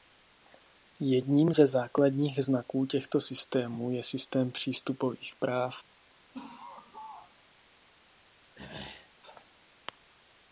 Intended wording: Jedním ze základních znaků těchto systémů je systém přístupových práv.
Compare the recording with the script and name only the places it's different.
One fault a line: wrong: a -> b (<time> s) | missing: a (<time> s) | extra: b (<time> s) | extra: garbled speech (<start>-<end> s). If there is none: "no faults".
no faults